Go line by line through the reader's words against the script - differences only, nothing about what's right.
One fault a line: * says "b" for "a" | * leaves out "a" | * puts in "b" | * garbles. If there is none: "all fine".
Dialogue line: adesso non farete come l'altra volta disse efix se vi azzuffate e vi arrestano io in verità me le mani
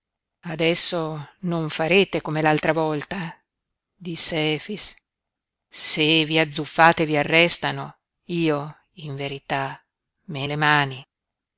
all fine